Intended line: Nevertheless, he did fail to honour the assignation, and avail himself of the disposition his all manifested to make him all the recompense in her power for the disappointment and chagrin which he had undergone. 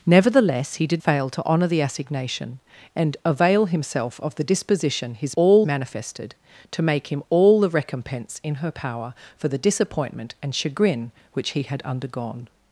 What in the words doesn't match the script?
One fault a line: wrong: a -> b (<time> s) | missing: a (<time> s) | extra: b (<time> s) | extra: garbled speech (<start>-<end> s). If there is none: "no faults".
no faults